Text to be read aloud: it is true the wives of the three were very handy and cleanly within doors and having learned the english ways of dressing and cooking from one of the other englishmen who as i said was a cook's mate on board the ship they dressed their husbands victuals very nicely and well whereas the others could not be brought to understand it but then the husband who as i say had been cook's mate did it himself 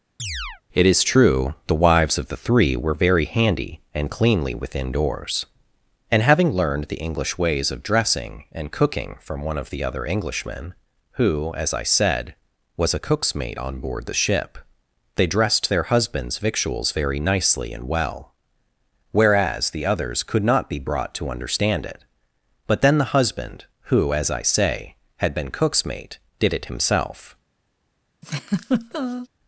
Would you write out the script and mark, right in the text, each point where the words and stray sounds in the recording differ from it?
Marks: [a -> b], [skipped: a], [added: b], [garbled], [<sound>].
[chirp] it is true the wives of the three were very handy and cleanly within doors and having learned the english ways of dressing and cooking from one of the other englishmen who as i said was a cook's mate on board the ship they dressed their husbands victuals very nicely and well whereas the others could not be brought to understand it but then the husband who as i say had been cook's mate did it himself [laugh]